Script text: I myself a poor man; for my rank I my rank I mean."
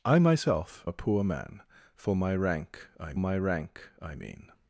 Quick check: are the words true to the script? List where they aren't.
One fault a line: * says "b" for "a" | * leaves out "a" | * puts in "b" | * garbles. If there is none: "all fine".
all fine